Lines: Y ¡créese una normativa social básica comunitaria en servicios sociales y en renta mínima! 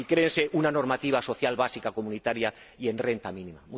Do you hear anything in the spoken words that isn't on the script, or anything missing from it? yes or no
yes